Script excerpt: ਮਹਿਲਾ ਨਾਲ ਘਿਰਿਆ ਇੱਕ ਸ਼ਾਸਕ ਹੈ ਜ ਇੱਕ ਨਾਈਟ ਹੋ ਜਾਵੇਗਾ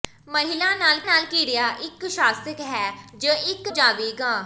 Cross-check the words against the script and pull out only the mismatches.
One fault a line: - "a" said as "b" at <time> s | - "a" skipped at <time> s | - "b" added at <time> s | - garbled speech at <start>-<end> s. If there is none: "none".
- "ਨਾਲ" added at 1.0 s
- "ਨਾਈਟ ਹੋ" skipped at 3.7 s